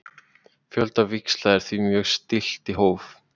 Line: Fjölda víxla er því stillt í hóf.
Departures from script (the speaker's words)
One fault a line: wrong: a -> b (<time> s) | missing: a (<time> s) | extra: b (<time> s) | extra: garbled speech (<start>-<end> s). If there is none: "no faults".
extra: mjög (1.9 s)